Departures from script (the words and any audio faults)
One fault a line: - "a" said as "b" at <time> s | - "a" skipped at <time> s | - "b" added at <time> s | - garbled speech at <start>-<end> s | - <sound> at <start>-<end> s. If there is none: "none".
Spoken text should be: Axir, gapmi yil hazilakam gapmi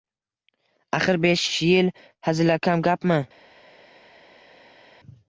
- "gapmi" said as "besh" at 1.3 s